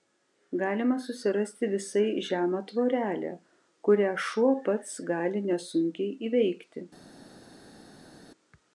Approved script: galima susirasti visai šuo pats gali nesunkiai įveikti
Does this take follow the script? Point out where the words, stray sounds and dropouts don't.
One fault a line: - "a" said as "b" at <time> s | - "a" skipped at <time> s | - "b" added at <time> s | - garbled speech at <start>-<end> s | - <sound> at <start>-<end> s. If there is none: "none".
- "žemą tvorelę kurią" added at 2.3 s